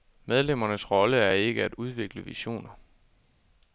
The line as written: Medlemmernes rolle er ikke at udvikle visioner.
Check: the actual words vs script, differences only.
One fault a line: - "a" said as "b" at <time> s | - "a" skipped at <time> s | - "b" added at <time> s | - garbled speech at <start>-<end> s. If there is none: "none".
none